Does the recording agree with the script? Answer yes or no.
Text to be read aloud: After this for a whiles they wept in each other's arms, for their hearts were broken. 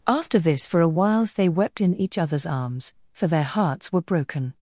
yes